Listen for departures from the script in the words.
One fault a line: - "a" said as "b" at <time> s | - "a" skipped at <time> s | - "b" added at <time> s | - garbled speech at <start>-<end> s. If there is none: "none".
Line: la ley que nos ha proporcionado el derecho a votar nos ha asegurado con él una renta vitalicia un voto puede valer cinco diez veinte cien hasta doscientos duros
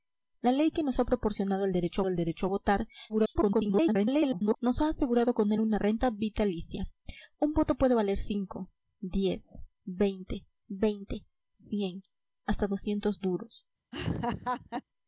- "el derecho" added at 2.1 s
- garbled speech at 3.1-4.6 s
- "veinte" added at 10.7 s